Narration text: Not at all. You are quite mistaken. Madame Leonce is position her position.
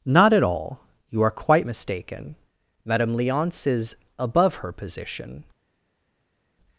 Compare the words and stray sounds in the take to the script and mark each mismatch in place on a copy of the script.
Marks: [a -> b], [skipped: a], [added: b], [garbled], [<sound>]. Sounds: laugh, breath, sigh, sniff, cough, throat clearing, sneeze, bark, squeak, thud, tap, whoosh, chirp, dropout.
Not at all. You are quite mistaken. Madame Leonce is [position -> above] her position.